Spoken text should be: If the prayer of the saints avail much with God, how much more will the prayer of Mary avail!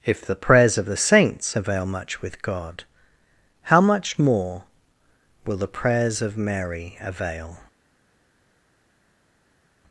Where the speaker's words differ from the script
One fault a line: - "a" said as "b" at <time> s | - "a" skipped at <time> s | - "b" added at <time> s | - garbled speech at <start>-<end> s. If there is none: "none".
- "prayer" said as "prayers" at 0.3 s
- "prayer" said as "prayers" at 5.7 s